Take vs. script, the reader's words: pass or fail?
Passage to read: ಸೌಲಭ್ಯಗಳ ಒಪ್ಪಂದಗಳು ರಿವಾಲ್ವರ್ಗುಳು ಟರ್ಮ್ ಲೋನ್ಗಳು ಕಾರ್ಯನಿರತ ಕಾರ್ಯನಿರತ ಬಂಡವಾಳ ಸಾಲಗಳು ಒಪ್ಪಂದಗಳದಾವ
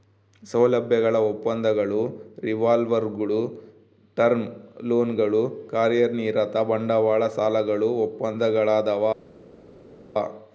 fail